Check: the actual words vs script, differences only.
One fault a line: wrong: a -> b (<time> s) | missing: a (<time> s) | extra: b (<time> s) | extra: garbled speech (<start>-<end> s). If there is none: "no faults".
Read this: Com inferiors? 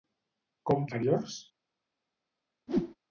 no faults